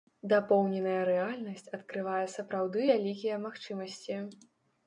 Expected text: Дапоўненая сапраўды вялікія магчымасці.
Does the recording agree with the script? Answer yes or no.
no